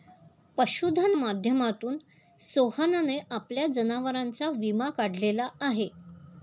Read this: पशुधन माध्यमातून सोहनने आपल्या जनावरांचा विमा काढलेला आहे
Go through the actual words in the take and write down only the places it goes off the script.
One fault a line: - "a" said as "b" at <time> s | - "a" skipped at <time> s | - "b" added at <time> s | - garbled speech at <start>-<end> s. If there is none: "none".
none